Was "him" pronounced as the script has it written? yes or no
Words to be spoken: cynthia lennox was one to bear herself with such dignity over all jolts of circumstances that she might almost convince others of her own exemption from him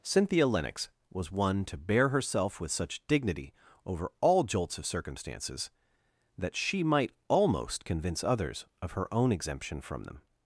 no